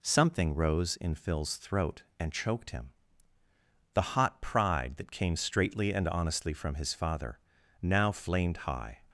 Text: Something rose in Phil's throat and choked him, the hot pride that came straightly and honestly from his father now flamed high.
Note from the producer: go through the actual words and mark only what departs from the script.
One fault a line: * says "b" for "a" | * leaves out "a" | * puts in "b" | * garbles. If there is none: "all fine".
all fine